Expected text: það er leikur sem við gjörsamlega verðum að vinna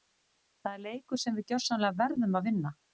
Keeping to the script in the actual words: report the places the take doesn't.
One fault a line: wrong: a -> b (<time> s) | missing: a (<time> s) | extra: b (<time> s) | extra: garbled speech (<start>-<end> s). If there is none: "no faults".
no faults